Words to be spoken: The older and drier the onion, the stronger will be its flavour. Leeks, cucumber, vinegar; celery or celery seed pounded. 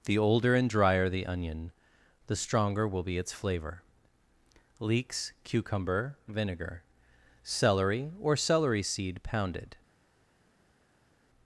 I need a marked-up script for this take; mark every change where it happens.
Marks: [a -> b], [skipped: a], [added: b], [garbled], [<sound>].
The older and drier the onion, the stronger will be its flavour. Leeks, cucumber, vinegar; celery or celery seed pounded.